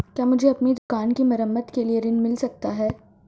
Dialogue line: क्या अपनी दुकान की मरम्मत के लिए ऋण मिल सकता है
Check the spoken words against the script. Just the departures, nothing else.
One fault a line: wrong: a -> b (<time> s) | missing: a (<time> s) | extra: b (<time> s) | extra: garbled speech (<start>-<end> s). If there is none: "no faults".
extra: मुझे (0.2 s)